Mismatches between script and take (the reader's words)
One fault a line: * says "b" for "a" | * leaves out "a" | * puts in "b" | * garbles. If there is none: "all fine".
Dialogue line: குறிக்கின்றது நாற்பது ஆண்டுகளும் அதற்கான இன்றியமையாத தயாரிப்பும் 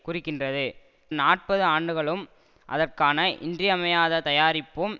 all fine